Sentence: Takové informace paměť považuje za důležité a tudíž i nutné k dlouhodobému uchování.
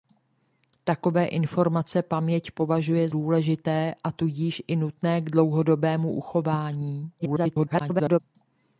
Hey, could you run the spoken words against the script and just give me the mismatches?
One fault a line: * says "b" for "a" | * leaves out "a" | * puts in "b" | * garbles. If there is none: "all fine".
* leaves out "za"
* garbles